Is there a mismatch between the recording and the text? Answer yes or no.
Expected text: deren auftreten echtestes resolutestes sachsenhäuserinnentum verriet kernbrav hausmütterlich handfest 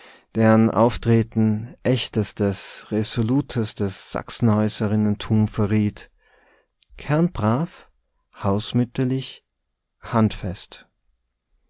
no